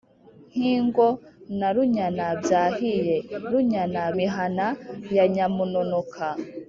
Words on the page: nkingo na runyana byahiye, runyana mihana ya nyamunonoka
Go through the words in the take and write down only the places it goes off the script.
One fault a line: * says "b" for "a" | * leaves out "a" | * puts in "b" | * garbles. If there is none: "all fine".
all fine